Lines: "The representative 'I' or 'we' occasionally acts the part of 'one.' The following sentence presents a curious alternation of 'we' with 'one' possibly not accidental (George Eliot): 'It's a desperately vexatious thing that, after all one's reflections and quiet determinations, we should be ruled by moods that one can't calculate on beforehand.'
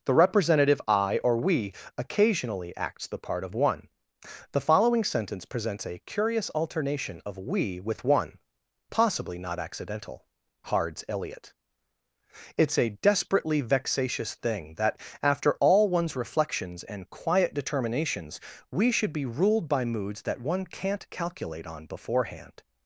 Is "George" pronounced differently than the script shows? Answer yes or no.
yes